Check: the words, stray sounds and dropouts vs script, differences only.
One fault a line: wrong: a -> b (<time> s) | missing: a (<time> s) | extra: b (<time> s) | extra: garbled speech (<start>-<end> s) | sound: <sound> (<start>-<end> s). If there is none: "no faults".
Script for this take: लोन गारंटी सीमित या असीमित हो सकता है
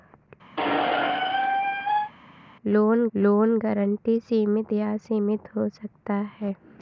sound: squeak (0.6-2.1 s)
extra: लोन (3.1 s)